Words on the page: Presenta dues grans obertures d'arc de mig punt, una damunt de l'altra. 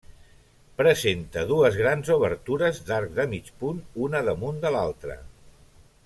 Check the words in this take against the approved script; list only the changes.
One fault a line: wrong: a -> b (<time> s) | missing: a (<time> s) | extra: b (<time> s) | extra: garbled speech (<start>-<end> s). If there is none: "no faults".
no faults